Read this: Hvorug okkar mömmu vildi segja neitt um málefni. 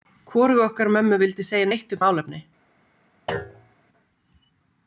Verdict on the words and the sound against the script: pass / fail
fail